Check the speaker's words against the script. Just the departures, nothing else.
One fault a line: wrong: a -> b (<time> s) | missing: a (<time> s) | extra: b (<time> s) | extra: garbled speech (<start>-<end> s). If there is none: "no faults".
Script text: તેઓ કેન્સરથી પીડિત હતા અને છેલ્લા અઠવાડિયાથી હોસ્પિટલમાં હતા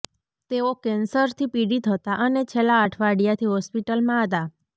no faults